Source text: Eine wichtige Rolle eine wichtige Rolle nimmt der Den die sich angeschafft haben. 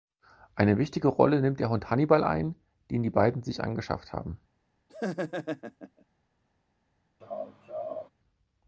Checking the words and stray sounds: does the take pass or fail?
fail